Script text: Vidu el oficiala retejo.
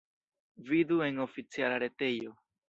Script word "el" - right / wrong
wrong